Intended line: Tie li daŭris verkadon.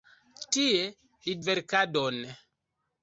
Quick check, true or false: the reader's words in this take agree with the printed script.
false